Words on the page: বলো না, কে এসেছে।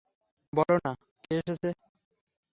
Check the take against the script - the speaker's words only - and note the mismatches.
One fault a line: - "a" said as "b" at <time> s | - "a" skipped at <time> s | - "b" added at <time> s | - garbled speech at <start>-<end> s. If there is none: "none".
none